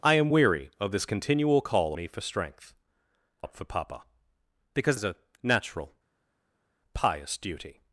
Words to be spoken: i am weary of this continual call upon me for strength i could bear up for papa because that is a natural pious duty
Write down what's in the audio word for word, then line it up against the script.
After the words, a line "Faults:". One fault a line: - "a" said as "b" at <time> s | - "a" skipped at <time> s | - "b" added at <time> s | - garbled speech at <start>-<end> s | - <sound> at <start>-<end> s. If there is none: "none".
i am weary of this continual call me for strength up for papa because is a natural pious duty
Faults:
- "upon" skipped at 1.9 s
- "i could bear" skipped at 2.7 s
- "that" skipped at 5.0 s